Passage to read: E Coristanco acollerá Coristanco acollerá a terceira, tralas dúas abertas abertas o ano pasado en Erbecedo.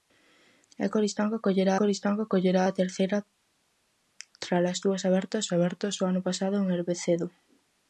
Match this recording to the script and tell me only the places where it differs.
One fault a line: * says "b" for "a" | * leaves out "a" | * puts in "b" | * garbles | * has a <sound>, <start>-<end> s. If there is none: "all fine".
all fine